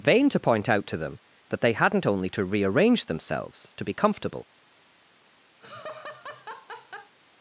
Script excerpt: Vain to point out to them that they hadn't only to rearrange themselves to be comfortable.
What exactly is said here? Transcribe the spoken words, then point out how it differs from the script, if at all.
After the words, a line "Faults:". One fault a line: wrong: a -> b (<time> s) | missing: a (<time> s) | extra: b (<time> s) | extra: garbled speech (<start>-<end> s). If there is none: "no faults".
Vain to point out to them that they hadn't only to rearrange themselves to be comfortable.
Faults:
no faults